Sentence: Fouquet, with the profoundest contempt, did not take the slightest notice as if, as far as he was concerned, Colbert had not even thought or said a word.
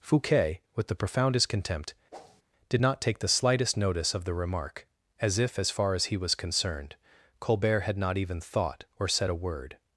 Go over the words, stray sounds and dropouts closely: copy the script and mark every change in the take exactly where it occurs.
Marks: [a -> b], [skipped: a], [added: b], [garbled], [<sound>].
Fouquet, with the profoundest contempt, [whoosh] did not take the slightest notice [added: of the remark] as if, as far as he was concerned, Colbert had not even thought or said a word.